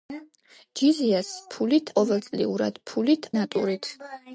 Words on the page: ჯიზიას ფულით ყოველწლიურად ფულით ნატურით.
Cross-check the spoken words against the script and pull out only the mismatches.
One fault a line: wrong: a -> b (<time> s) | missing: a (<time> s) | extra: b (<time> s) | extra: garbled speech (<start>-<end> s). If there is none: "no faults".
no faults